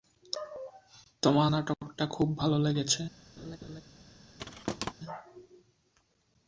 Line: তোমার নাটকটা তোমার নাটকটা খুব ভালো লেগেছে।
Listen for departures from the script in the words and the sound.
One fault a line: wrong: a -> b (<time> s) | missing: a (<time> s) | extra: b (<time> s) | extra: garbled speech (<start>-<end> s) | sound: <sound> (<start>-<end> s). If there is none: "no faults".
missing: তোমার নাটকটা (2.0 s)
sound: laugh (3.4-3.8 s)
sound: thud (4.4-4.9 s)